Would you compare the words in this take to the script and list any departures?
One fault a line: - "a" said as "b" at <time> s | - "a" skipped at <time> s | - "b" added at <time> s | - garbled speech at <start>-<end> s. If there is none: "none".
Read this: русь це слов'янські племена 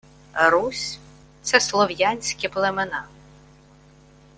none